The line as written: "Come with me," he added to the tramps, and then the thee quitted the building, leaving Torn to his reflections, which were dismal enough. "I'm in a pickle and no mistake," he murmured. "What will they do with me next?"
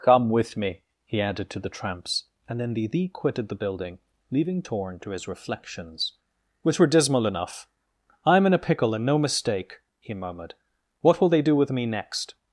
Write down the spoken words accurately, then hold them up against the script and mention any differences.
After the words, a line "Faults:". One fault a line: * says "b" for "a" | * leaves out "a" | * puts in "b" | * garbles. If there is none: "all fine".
"Come with me," he added to the tramps, and then the thee quitted the building, leaving Torn to his reflections, which were dismal enough. "I'm in a pickle and no mistake," he murmured. "What will they do with me next?"
Faults:
all fine